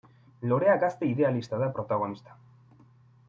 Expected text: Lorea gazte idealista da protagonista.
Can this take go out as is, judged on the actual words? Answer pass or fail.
pass